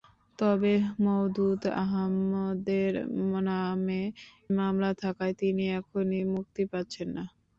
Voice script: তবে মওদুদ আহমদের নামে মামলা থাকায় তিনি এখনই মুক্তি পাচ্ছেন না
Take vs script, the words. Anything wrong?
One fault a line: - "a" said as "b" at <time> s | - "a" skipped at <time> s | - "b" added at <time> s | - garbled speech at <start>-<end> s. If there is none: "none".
none